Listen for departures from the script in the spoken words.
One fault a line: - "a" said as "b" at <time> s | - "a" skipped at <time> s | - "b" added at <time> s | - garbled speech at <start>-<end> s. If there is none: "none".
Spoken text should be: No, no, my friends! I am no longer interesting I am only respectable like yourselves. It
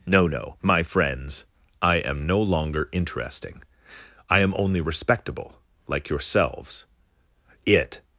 none